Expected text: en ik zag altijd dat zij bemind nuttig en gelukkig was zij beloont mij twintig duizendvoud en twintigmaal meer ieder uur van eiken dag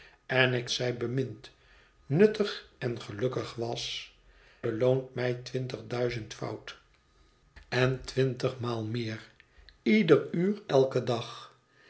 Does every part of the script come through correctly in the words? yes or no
no